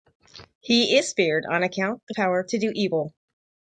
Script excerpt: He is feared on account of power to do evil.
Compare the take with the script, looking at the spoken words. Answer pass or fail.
pass